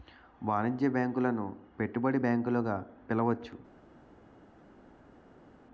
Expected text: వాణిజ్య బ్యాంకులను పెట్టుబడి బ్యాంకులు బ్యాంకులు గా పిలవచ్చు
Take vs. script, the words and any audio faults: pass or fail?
fail